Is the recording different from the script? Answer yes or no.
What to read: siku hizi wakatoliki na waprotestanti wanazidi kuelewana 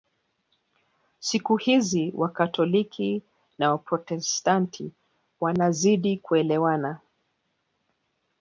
no